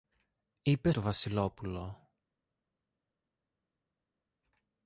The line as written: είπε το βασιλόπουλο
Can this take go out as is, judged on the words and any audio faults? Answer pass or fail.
pass